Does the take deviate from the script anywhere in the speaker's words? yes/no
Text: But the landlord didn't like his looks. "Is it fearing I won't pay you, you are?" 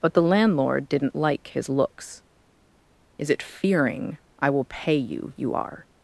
yes